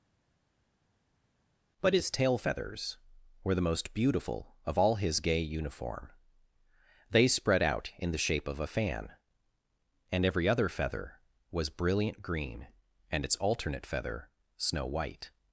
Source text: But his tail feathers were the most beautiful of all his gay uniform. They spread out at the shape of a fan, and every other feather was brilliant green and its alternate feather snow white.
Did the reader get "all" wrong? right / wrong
right